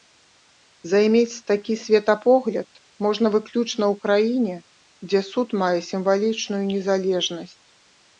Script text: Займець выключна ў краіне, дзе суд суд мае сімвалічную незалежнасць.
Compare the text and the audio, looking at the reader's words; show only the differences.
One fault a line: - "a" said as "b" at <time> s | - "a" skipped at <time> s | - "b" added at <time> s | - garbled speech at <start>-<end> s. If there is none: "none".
- "такі светапогляд можна" added at 1.5 s
- "суд" skipped at 5.5 s